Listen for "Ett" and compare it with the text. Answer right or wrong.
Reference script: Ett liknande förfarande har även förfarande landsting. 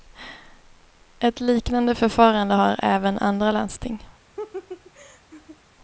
right